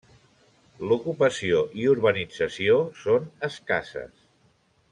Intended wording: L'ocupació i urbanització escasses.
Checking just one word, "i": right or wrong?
right